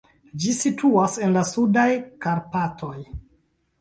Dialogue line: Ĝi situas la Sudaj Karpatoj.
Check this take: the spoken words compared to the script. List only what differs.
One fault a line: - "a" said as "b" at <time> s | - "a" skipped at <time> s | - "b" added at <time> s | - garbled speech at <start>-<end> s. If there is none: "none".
- "en" added at 1.3 s